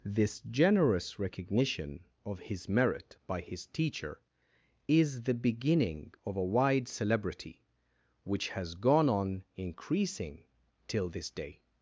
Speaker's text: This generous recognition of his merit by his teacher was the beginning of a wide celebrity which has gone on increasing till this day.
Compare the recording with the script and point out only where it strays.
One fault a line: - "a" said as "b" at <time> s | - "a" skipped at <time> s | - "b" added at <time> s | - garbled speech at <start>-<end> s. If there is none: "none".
- "was" said as "is" at 4.9 s